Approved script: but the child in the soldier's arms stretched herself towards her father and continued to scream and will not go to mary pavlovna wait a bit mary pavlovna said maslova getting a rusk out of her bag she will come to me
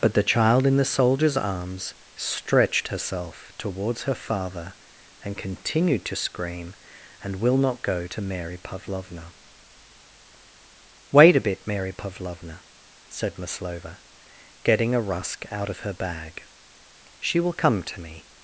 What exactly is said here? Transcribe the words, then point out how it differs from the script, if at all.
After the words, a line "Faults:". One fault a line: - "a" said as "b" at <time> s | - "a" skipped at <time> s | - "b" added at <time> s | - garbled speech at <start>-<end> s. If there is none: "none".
but the child in the soldier's arms stretched herself towards her father and continued to scream and will not go to mary pavlovna wait a bit mary pavlovna said maslova getting a rusk out of her bag she will come to me
Faults:
none